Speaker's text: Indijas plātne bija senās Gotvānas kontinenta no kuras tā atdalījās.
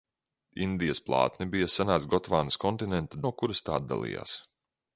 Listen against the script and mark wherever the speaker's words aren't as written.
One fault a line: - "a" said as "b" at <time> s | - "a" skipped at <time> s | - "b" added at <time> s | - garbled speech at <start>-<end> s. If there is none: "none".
none